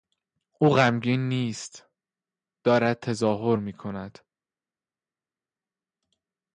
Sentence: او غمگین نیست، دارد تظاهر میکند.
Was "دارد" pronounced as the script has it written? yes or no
yes